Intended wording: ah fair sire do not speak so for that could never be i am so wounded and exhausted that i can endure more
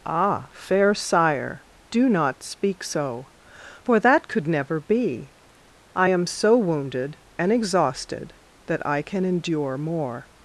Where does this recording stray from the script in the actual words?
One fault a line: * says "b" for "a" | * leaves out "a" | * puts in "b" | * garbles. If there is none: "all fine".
all fine